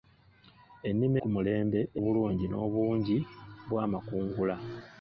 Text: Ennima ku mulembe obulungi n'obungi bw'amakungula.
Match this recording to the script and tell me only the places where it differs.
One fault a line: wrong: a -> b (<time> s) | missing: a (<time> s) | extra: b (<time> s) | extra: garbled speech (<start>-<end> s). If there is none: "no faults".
no faults